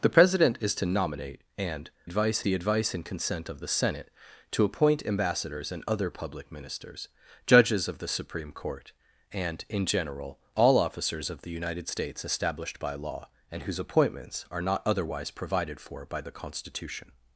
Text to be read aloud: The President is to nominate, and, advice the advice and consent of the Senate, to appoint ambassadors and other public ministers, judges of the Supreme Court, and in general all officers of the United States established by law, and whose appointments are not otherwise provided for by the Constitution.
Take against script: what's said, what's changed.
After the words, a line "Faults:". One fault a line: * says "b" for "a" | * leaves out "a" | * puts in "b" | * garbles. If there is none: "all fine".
The President is to nominate, and, advice the advice and consent of the Senate, to appoint ambassadors and other public ministers, judges of the Supreme Court, and in general all officers of the United States established by law, and whose appointments are not otherwise provided for by the Constitution.
Faults:
all fine